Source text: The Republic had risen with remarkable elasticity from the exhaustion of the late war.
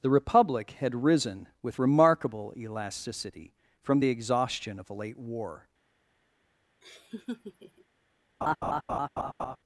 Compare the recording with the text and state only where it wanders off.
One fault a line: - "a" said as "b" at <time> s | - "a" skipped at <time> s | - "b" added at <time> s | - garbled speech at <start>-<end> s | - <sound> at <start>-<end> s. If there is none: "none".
- "the" said as "a" at 4.9 s
- laugh at 6.8-7.8 s
- laugh at 8.4-9.6 s